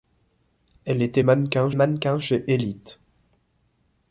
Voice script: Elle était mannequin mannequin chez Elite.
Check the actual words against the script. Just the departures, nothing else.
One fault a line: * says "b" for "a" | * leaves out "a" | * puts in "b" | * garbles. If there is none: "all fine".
all fine